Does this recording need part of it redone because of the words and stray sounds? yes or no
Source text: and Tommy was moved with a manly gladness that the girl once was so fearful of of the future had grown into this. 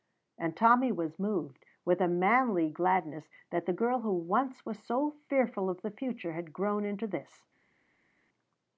yes